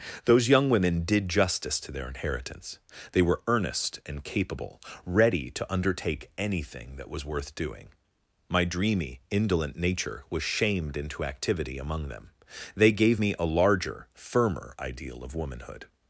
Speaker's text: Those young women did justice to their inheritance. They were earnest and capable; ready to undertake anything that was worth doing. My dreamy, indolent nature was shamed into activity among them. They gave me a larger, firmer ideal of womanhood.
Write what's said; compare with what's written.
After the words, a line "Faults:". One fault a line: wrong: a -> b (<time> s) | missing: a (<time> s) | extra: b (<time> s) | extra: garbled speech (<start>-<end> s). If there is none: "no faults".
Those young women did justice to their inheritance. They were earnest and capable; ready to undertake anything that was worth doing. My dreamy, indolent nature was shamed into activity among them. They gave me a larger, firmer ideal of womanhood.
Faults:
no faults